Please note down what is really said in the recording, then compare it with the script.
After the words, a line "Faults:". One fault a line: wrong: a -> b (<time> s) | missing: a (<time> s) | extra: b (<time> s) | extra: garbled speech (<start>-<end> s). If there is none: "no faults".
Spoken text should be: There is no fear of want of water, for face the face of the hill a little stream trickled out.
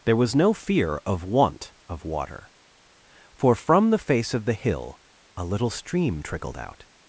There was no fear of want of water, for from the face of the hill a little stream trickled out.
Faults:
wrong: is -> was (0.1 s)
wrong: face -> from (3.5 s)